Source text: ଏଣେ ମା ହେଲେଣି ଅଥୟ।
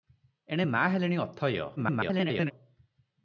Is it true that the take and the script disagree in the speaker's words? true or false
true